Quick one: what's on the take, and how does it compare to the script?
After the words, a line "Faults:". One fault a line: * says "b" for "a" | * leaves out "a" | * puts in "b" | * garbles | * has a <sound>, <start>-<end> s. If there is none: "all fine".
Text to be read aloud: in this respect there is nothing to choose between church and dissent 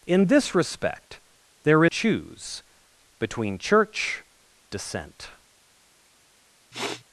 in this respect there choose between church dissent
Faults:
* leaves out "is nothing to"
* leaves out "and"
* has a sniff, 6.7-7.0 s